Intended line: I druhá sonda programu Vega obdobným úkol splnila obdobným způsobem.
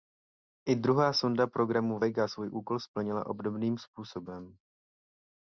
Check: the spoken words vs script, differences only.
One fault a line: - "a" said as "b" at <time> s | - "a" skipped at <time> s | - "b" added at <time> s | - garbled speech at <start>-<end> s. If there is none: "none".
- "obdobným" said as "svůj" at 2.3 s